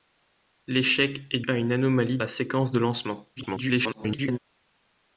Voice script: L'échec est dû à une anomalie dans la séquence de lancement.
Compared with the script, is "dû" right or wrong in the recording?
wrong